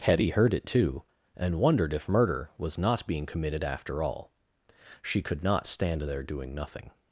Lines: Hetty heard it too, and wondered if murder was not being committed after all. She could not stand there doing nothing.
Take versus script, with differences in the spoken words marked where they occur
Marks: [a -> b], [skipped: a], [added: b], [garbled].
Hetty heard it too, and wondered if murder was not being committed after all. She could not stand there doing nothing.